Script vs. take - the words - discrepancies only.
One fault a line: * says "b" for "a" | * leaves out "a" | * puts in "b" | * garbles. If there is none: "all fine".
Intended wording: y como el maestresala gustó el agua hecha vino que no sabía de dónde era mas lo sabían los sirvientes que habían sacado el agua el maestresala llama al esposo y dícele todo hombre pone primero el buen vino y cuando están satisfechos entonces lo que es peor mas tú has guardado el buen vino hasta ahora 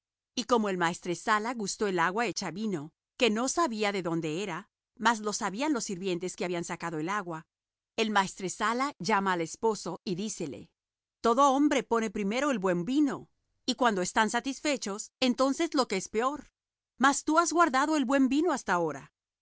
all fine